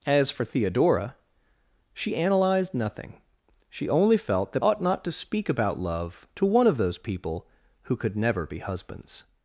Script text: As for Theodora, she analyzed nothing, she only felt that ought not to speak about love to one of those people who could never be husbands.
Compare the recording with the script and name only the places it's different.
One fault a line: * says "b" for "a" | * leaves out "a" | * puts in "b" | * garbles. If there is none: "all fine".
all fine